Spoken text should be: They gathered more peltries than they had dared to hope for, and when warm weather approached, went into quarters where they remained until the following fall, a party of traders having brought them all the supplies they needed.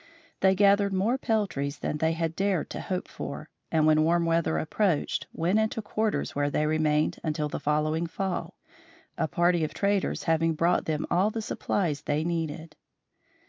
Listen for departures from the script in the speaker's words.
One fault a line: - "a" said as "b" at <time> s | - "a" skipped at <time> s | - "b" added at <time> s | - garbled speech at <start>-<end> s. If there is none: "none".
none